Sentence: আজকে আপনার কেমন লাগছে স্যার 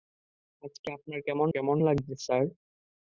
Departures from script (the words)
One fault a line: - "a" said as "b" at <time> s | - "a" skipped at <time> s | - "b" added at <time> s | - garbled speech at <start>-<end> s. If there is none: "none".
- "কেমন" added at 1.5 s